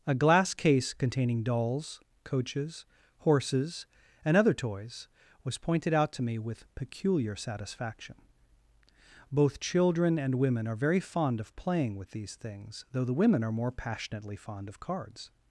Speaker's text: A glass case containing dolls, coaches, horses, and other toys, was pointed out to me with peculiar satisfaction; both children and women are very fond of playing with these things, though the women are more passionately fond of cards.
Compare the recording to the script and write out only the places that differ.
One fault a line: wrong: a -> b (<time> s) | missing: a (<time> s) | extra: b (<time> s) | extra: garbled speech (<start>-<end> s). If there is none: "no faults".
no faults